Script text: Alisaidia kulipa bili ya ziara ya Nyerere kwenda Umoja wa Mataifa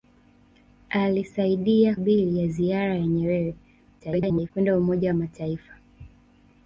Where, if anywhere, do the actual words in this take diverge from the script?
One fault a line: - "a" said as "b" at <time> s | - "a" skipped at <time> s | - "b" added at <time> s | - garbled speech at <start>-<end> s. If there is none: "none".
- "kulipa" skipped at 2.0 s
- garbled speech at 4.0-4.5 s